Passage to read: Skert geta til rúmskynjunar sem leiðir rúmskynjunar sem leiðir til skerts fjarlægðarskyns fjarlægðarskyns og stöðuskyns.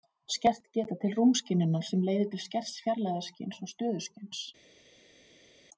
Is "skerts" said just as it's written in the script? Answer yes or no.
yes